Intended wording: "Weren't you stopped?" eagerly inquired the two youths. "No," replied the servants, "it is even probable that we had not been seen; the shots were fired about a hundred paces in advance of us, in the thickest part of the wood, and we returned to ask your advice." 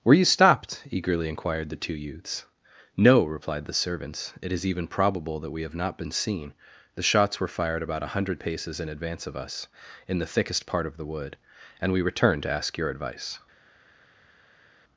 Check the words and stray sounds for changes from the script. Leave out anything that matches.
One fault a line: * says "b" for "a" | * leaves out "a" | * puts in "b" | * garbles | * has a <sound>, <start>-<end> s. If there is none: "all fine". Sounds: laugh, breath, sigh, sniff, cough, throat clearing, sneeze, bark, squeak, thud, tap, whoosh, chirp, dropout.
* says "Were" for "Weren't"
* says "have" for "had"